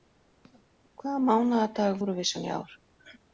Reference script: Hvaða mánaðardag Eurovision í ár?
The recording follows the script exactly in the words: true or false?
true